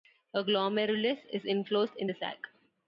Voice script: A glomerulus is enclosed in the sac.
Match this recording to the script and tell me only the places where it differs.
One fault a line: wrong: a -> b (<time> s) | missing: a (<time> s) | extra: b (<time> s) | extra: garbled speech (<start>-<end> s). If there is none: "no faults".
no faults